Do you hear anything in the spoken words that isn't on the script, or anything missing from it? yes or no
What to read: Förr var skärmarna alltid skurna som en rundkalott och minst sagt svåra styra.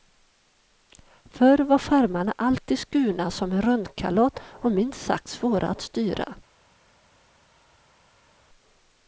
yes